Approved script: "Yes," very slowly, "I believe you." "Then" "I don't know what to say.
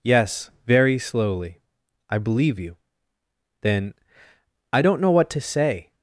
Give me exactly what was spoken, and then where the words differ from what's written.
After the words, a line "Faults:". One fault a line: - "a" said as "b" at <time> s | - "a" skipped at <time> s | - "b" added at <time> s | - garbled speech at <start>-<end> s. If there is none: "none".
"Yes," very slowly, "I believe you." "Then" "I don't know what to say.
Faults:
none